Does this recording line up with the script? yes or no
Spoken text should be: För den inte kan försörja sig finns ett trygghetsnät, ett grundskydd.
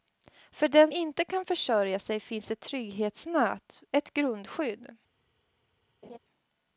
yes